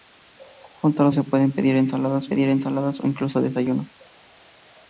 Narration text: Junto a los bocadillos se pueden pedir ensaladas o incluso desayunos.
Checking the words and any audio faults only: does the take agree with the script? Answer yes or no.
no